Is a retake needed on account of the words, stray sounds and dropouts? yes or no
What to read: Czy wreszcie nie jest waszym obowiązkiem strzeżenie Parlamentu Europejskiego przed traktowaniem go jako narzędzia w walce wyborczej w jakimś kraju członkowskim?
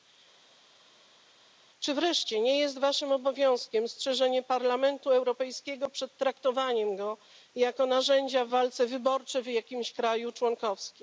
no